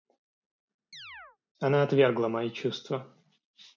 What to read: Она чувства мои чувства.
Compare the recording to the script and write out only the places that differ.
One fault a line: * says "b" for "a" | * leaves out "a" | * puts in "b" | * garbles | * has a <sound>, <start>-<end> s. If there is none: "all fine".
* has a chirp, 0.9-1.4 s
* says "отвергла" for "чувства"